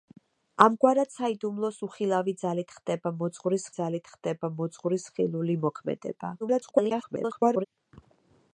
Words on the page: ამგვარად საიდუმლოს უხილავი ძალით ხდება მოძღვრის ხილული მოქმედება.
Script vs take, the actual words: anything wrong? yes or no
yes